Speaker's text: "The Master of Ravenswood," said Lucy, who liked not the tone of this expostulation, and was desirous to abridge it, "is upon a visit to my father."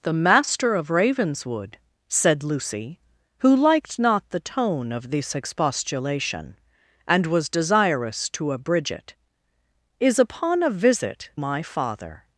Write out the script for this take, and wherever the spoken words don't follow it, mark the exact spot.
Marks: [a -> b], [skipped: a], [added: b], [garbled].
"The Master of Ravenswood," said Lucy, who liked not the tone of this expostulation, and was desirous to abridge it, "is upon a visit [skipped: to] my father."